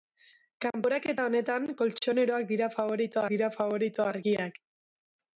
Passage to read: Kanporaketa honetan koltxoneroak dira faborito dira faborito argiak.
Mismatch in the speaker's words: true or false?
false